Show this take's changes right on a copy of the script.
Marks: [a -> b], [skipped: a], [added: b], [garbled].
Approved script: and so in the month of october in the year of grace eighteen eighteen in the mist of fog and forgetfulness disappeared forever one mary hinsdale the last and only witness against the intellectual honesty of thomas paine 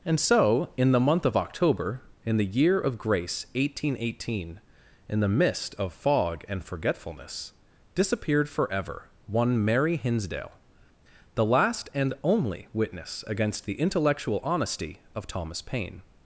and so in the month of october in the year of grace eighteen eighteen in the mist of fog and forgetfulness disappeared forever one mary hinsdale the last and only witness against the intellectual honesty of thomas paine